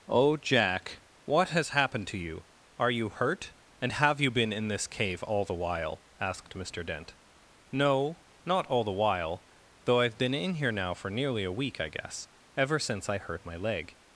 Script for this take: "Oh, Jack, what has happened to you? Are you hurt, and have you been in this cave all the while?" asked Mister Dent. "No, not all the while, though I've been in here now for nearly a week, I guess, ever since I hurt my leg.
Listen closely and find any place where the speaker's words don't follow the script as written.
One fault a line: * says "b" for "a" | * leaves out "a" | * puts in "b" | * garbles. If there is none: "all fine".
all fine